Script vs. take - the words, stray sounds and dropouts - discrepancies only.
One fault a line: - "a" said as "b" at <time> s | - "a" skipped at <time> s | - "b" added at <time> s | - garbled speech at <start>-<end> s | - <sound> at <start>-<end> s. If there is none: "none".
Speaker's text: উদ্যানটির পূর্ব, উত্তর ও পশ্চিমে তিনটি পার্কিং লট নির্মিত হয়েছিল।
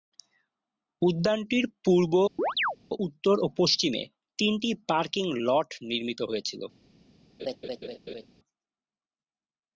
- chirp at 2.4-2.8 s
- laugh at 7.4-8.3 s